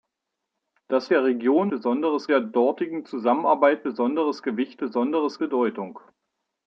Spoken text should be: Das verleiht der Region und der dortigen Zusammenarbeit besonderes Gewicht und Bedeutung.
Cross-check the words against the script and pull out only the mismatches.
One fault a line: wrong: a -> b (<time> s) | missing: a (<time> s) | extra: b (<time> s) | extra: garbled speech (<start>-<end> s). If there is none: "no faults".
missing: verleiht (1.1 s)
wrong: und -> besonderes (1.7 s)
wrong: und -> besonderes (4.8 s)